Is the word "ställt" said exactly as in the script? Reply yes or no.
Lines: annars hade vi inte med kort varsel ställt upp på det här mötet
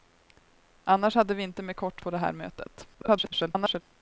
no